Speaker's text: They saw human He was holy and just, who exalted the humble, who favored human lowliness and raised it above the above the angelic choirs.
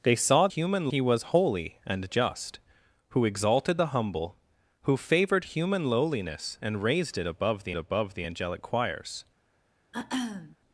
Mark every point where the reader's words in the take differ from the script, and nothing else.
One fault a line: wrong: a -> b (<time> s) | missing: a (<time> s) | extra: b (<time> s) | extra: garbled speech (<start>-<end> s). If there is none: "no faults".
no faults